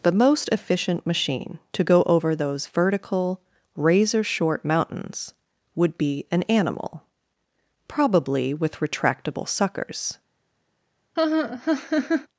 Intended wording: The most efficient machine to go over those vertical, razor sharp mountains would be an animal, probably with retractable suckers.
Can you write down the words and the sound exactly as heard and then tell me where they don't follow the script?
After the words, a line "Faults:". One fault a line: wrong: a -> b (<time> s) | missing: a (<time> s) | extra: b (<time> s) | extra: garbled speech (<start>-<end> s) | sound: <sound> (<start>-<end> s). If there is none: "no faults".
The most efficient machine to go over those vertical, razor short mountains would be an animal, probably with retractable suckers.
Faults:
wrong: sharp -> short (4.2 s)
sound: laugh (11.2-12.3 s)